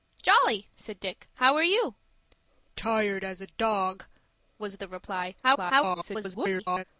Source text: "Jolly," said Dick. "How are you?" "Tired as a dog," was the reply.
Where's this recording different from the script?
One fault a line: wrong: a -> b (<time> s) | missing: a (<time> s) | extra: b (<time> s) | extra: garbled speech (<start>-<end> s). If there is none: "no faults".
extra: garbled speech (5.4-6.8 s)